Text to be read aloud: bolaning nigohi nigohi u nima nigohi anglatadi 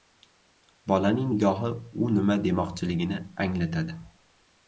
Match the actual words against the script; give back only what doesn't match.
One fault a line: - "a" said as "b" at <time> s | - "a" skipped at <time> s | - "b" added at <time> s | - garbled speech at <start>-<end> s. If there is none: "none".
- "nigohi" skipped at 1.7 s
- "nigohi" said as "demoqchiligini" at 2.4 s